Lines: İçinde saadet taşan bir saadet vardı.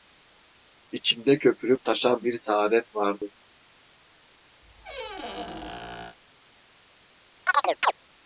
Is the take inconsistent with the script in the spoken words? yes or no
yes